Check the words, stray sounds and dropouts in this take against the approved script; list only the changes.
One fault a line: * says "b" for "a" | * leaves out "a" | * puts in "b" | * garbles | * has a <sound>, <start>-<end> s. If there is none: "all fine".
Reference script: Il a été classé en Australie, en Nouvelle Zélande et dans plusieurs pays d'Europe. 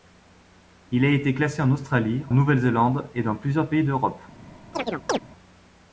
* leaves out "en"
* has a chirp, 4.7-5.2 s